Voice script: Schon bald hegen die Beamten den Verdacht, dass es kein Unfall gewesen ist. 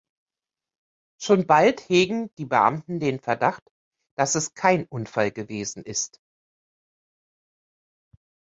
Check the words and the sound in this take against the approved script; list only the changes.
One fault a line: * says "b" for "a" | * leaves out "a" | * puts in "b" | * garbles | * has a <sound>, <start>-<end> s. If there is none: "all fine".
all fine